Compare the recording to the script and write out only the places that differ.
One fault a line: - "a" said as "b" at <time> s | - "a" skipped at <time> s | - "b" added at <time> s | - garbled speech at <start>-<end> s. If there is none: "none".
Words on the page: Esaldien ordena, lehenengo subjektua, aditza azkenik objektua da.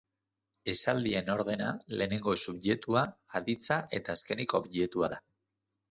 - "eta" added at 4.0 s